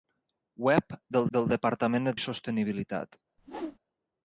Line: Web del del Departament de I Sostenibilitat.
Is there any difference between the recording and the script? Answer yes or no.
no